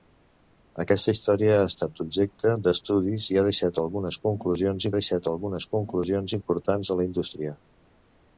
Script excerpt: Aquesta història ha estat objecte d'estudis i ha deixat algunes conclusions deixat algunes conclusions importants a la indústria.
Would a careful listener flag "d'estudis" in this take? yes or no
no